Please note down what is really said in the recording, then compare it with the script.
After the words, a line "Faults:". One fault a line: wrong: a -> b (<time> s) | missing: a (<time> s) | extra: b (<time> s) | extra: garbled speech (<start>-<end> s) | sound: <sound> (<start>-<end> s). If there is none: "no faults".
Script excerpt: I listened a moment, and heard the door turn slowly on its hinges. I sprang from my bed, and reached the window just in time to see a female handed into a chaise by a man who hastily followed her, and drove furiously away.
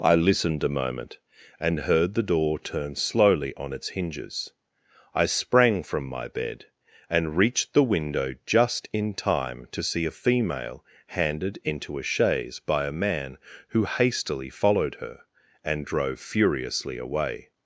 I listened a moment, and heard the door turn slowly on its hinges. I sprang from my bed, and reached the window just in time to see a female handed into a chaise by a man who hastily followed her, and drove furiously away.
Faults:
no faults